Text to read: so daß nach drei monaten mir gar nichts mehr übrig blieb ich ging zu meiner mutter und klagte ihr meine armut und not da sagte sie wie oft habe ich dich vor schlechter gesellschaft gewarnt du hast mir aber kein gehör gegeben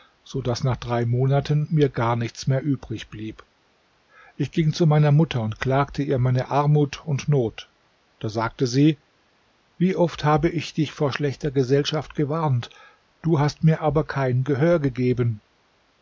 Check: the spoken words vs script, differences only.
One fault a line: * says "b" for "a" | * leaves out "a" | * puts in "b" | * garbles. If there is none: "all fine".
all fine